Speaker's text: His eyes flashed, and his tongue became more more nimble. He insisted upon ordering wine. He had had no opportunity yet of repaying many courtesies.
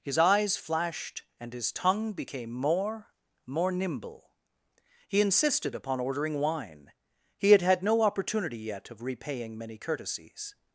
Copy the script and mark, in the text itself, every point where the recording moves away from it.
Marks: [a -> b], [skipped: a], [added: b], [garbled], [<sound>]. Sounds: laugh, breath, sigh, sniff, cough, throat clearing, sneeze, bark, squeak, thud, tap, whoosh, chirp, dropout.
His eyes flashed, and his tongue became more more nimble. He insisted upon ordering wine. He had had no opportunity yet of repaying many courtesies.